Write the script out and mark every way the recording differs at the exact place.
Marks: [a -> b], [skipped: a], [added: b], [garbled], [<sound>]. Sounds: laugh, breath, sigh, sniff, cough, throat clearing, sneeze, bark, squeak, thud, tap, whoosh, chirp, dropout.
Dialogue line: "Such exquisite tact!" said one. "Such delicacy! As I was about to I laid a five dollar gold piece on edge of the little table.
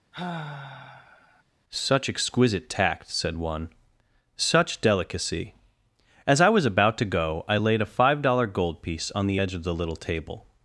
[sigh] "Such exquisite tact!" said one. "Such delicacy! As I was about to [added: go] I laid a five dollar gold piece on [added: the] edge of the little table.